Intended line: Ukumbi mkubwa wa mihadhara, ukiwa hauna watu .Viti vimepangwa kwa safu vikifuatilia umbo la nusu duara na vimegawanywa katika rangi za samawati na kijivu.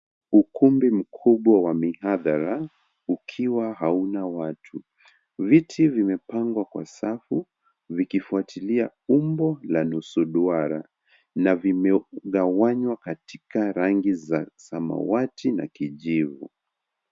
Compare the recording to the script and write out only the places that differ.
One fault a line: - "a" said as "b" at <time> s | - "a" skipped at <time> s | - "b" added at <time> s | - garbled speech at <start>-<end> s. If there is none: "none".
none